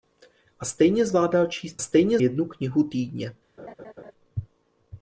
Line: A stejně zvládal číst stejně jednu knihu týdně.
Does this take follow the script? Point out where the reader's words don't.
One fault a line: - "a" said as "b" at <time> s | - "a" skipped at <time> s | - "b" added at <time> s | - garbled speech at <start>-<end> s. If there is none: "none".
none